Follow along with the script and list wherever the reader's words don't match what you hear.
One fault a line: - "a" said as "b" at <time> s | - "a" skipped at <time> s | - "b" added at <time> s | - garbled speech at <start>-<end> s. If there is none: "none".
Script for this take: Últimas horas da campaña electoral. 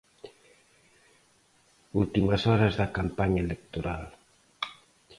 none